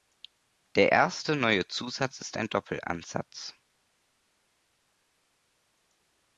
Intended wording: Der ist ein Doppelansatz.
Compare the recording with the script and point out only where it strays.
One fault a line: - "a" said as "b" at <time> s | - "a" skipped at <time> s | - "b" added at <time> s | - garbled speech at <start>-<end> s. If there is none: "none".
- "erste neue Zusatz" added at 0.9 s